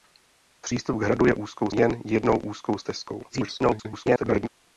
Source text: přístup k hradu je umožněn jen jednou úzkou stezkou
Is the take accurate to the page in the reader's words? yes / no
no